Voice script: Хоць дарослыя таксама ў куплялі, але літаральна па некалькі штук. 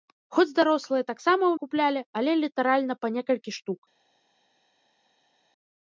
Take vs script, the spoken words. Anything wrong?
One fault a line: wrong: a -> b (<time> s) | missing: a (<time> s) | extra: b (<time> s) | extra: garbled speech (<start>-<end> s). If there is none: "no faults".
no faults